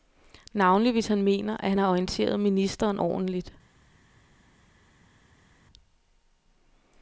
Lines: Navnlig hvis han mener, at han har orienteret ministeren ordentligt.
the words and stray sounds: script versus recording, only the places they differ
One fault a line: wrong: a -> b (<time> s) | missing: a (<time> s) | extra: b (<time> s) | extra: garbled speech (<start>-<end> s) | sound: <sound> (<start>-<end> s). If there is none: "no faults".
no faults